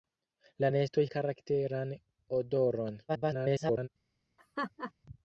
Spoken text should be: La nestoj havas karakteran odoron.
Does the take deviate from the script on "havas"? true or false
true